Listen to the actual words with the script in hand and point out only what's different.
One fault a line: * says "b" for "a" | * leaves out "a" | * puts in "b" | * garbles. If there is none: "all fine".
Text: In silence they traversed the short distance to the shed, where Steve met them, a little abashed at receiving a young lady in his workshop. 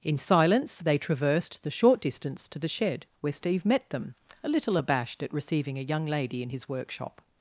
all fine